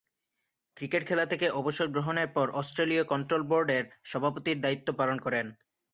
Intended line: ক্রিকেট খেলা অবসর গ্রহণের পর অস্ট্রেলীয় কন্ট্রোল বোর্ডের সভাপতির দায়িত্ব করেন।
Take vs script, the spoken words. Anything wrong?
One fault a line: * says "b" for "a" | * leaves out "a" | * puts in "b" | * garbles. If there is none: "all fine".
* puts in "থেকে"
* puts in "পালন"